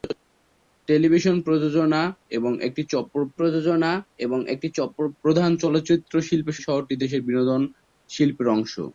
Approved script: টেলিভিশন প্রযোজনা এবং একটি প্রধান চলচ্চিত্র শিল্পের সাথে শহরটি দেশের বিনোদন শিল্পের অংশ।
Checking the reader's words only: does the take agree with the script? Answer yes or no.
no